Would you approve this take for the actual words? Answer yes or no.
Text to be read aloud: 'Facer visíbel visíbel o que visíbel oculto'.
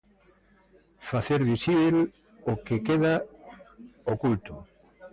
no